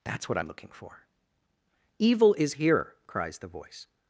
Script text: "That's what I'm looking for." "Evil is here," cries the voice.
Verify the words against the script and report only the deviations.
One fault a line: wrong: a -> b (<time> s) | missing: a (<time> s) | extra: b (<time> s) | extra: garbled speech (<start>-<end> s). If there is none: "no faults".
no faults